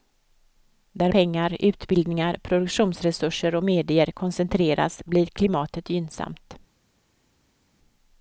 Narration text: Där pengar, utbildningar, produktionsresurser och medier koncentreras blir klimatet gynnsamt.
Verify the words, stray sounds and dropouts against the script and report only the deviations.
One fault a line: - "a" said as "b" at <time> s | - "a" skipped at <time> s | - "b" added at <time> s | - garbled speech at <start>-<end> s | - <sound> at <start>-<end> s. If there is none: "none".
none